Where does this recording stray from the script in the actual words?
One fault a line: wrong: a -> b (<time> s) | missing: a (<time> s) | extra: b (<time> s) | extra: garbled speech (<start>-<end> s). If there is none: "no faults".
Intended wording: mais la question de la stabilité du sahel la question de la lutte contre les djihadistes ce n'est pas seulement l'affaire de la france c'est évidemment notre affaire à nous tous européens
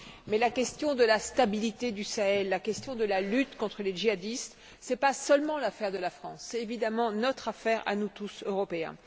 no faults